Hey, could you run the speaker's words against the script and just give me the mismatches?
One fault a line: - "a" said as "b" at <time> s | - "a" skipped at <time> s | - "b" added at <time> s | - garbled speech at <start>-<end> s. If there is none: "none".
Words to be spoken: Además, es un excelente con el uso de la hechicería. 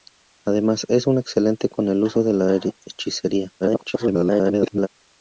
- garbled speech at 3.6-4.9 s